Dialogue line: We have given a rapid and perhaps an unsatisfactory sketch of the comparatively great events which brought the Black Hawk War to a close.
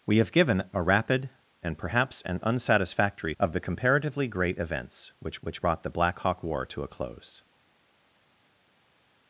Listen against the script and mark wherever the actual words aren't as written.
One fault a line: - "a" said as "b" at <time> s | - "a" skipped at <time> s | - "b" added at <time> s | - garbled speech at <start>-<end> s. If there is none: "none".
- "sketch" skipped at 3.4 s
- "which" added at 5.4 s